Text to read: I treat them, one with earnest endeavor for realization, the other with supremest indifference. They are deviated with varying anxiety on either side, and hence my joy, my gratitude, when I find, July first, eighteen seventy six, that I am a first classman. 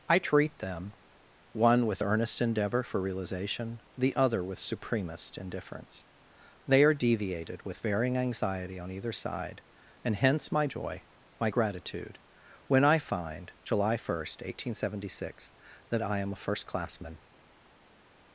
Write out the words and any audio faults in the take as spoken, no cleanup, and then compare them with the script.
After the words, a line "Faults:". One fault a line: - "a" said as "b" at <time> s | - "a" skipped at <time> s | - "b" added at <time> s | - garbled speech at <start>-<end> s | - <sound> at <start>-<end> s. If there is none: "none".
I treat them, one with earnest endeavor for realization, the other with supremest indifference. They are deviated with varying anxiety on either side, and hence my joy, my gratitude, when I find, July first, eighteen seventy six, that I am a first classman.
Faults:
none